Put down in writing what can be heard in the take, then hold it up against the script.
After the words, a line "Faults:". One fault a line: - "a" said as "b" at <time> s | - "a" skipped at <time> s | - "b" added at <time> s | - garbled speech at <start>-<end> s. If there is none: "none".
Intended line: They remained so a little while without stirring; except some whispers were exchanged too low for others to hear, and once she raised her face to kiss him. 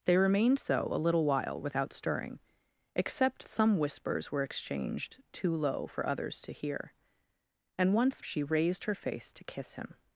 They remained so a little while without stirring; except some whispers were exchanged too low for others to hear, and once she raised her face to kiss him.
Faults:
none